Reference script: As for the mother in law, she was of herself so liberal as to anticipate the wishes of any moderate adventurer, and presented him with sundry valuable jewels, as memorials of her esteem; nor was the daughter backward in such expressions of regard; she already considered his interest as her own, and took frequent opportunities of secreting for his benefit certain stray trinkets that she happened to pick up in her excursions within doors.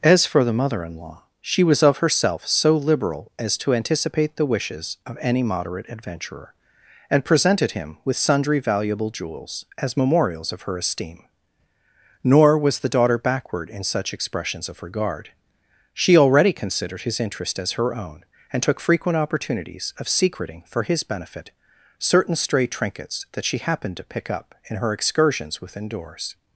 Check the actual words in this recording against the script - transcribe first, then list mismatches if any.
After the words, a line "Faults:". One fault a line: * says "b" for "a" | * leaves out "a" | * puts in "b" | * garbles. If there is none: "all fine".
As for the mother in law, she was of herself so liberal as to anticipate the wishes of any moderate adventurer, and presented him with sundry valuable jewels, as memorials of her esteem; nor was the daughter backward in such expressions of regard; she already considered his interest as her own, and took frequent opportunities of secreting for his benefit certain stray trinkets that she happened to pick up in her excursions within doors.
Faults:
all fine